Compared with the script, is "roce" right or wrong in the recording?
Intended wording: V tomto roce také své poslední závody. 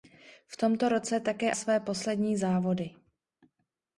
right